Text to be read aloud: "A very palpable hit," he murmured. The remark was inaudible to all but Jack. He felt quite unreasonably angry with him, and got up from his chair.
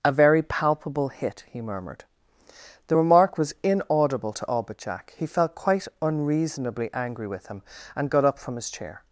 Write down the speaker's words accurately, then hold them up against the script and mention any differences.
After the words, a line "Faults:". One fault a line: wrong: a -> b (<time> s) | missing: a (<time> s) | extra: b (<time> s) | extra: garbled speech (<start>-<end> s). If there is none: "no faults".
"A very palpable hit," he murmured. The remark was inaudible to all but Jack. He felt quite unreasonably angry with him, and got up from his chair.
Faults:
no faults